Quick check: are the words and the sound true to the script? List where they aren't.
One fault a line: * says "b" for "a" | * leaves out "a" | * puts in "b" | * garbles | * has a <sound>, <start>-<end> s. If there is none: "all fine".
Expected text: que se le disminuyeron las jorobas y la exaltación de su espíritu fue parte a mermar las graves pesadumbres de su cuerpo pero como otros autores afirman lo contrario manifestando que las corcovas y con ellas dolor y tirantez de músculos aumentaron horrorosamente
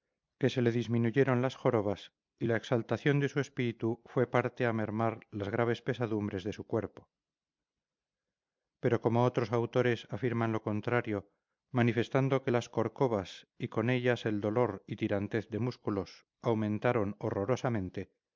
* puts in "el"